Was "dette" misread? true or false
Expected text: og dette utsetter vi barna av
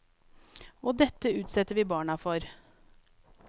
false